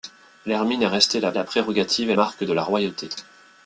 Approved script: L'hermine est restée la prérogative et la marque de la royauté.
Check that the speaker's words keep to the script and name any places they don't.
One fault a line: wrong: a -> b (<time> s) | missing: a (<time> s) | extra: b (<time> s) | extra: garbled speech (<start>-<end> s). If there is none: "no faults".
extra: la (1.3 s)
missing: la (2.1 s)